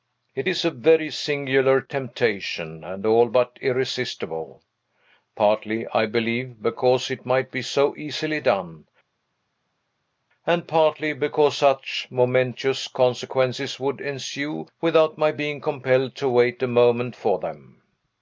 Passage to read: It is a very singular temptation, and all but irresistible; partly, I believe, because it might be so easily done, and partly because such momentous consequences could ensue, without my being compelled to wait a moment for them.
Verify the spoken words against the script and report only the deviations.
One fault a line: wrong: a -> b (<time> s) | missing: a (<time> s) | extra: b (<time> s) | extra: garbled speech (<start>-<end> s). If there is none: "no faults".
wrong: could -> would (13.8 s)